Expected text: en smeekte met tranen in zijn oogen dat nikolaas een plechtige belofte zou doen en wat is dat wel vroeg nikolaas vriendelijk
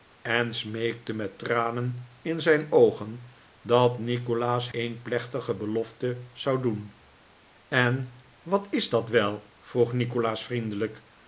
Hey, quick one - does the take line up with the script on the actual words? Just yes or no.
yes